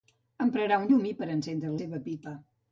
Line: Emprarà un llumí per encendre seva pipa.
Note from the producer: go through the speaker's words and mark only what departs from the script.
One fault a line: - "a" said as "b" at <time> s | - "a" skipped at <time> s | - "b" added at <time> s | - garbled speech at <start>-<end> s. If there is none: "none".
none